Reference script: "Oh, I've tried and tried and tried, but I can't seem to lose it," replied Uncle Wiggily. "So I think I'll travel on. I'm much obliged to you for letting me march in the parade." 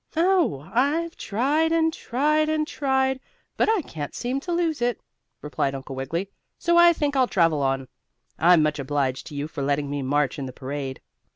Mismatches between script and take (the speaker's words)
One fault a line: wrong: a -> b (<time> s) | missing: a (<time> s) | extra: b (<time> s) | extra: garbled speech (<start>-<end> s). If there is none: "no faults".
no faults